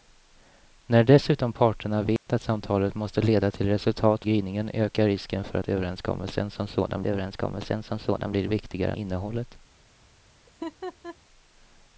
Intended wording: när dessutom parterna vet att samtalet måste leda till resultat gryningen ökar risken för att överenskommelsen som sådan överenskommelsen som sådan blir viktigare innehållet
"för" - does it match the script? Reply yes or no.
yes